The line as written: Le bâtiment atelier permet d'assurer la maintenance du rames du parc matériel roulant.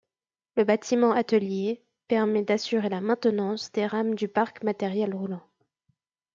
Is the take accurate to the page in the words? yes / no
no